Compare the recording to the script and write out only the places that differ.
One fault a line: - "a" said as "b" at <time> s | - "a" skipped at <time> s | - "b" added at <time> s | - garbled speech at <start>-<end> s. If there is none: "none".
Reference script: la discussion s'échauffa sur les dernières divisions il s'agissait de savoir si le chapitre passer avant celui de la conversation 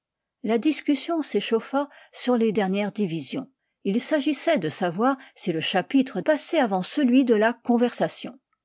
none